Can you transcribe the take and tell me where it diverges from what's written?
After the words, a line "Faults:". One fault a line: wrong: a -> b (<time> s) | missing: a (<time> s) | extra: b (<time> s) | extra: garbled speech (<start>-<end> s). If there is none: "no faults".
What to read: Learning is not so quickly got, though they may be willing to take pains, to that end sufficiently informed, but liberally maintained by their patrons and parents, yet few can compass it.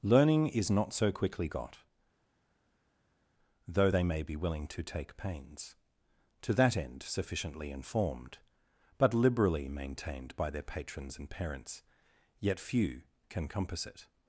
Learning is not so quickly got, though they may be willing to take pains, to that end sufficiently informed, but liberally maintained by their patrons and parents, yet few can compass it.
Faults:
no faults